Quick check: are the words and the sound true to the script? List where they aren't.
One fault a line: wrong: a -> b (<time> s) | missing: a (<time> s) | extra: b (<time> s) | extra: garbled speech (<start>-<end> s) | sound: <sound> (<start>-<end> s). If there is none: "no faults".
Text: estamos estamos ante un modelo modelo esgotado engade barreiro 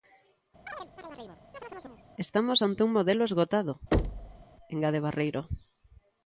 sound: chirp (0.7-2.0 s)
missing: estamos (2.6 s)
missing: modelo (3.2 s)
sound: thud (3.9-4.4 s)